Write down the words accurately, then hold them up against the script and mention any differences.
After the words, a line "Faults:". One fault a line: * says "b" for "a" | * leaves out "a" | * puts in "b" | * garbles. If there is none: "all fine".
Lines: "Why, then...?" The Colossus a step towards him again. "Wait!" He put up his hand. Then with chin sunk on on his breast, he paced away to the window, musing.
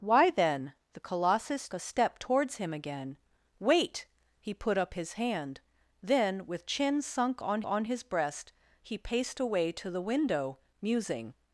"Why, then...?" The Colossus a step towards him again. "Wait!" He put up his hand. Then with chin sunk on on his breast, he paced away to the window, musing.
Faults:
all fine